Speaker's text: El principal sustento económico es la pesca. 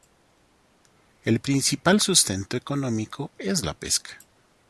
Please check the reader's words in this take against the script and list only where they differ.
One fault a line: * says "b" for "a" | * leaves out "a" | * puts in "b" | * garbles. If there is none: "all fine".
all fine